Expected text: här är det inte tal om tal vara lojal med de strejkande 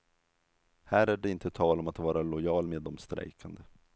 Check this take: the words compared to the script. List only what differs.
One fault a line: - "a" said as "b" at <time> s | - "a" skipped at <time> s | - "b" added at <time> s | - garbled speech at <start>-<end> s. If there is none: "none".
- "tal" said as "att" at 1.9 s